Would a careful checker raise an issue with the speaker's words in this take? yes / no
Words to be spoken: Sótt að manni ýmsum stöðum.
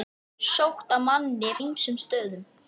no